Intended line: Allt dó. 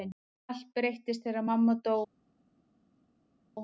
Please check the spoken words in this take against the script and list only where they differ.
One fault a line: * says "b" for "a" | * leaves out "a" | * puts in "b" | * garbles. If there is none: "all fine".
* puts in "breyttist þegar mamma"